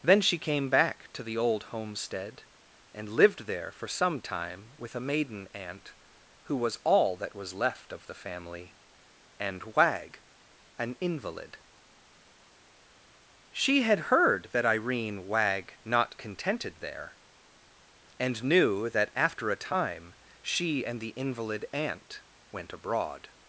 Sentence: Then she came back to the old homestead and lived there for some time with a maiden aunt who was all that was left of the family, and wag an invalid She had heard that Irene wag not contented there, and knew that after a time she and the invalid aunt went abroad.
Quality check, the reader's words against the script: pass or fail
pass